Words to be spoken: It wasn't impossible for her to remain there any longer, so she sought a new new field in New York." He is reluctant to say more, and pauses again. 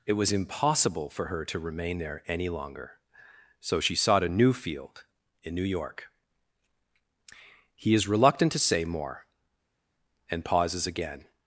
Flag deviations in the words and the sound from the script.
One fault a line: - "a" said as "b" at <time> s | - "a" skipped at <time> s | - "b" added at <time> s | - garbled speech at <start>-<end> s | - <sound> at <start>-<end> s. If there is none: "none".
- "wasn't" said as "was" at 0.1 s
- "new" skipped at 4.5 s